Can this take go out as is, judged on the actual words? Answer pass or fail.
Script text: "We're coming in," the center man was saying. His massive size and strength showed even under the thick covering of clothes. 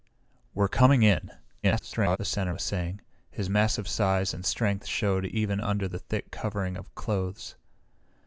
fail